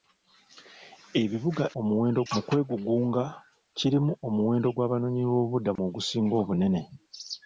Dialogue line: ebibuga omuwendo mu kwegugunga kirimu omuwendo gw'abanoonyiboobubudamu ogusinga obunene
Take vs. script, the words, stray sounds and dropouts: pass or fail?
fail